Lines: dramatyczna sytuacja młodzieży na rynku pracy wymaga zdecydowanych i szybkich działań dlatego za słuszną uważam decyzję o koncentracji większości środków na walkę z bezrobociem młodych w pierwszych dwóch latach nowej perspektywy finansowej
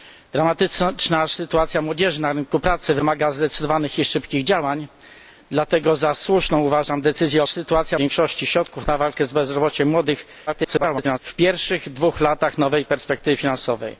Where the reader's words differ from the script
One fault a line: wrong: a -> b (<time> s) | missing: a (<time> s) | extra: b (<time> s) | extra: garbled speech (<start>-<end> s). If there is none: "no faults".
wrong: koncentracji -> sytuacja (7.4 s)
extra: garbled speech (10.5-11.2 s)